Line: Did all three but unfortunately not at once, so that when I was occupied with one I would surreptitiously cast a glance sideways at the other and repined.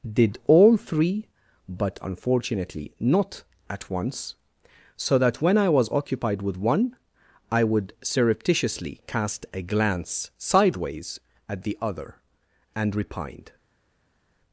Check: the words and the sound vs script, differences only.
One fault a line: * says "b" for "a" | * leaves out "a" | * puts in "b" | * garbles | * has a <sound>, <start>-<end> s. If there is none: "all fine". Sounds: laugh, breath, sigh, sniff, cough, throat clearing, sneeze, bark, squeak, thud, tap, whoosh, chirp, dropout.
all fine